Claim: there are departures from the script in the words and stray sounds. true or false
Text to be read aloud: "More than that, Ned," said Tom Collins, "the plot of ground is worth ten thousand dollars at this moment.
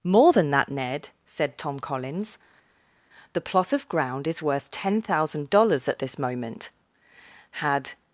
true